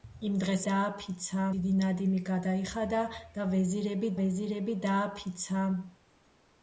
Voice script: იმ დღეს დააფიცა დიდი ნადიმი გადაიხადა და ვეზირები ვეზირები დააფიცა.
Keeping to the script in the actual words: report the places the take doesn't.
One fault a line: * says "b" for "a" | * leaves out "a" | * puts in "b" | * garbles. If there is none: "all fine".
all fine